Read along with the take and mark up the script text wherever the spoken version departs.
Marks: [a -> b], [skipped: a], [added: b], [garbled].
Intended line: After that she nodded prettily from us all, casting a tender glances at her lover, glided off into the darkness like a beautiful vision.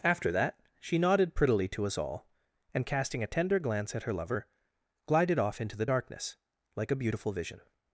After that she nodded prettily [from -> to] us all, [added: and] casting a tender [glances -> glance] at her lover, glided off into the darkness like a beautiful vision.